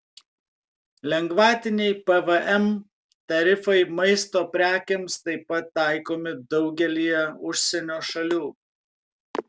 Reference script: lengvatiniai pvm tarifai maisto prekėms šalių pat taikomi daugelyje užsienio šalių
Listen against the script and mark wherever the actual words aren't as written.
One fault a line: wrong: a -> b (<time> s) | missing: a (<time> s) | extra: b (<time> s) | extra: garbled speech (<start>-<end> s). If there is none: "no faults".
wrong: šalių -> taip (5.3 s)